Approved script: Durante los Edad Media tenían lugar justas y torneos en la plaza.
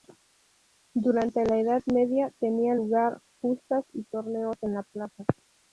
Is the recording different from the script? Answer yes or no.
yes